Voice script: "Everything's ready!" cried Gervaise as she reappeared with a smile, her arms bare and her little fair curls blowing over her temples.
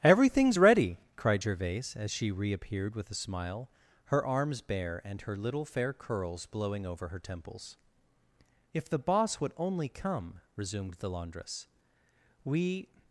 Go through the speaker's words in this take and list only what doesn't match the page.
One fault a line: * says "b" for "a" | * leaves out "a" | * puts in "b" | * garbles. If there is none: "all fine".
* puts in "If the boss would only come resumed the laundress we"